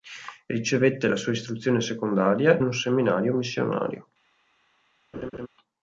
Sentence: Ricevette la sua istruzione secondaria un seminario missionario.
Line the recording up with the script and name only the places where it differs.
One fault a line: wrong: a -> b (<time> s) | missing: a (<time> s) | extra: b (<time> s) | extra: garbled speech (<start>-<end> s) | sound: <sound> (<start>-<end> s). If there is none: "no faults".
sound: laugh (5.1-5.5 s)